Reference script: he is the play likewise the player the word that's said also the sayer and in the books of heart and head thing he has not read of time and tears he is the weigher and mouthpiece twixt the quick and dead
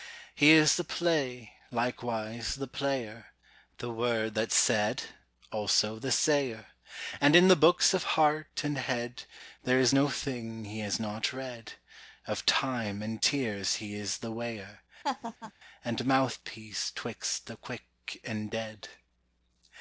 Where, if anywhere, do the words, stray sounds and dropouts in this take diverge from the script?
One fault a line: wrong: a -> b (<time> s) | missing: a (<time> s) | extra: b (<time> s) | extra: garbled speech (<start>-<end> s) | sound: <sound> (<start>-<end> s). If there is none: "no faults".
extra: there is no (9.6 s)
sound: laugh (15.0-15.5 s)